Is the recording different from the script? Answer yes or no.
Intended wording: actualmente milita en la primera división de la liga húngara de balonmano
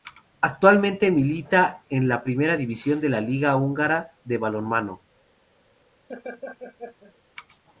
no